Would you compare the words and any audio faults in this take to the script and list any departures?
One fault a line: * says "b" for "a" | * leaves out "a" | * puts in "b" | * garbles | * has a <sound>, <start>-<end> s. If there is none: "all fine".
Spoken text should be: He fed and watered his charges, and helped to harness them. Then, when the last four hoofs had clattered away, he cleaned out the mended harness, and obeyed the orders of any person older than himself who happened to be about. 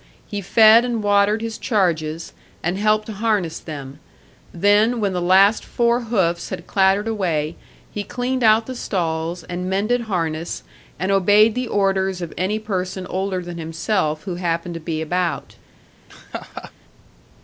* puts in "stalls and"
* has a laugh, 16.1-16.7 s